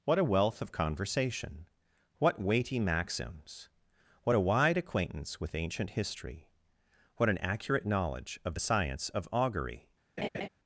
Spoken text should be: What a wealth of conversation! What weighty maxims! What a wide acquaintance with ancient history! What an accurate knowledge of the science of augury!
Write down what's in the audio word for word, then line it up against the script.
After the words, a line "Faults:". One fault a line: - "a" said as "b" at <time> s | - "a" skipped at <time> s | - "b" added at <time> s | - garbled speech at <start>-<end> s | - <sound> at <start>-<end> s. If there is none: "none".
What a wealth of conversation! What weighty maxims! What a wide acquaintance with ancient history! What an accurate knowledge of the science of augury!
Faults:
- laugh at 10.2-10.5 s